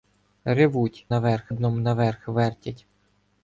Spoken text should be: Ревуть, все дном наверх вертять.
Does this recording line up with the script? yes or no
no